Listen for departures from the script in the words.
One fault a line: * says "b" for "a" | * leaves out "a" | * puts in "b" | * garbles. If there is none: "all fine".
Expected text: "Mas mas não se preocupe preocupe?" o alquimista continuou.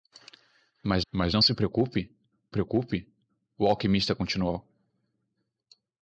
all fine